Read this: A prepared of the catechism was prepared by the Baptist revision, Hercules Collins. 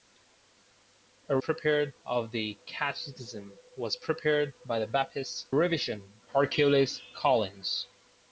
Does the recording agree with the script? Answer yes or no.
yes